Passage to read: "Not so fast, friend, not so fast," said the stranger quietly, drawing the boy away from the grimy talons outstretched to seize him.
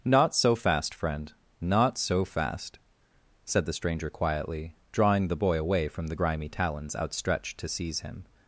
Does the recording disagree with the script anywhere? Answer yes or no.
no